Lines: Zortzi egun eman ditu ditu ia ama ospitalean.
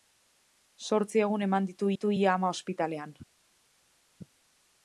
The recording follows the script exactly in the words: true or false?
true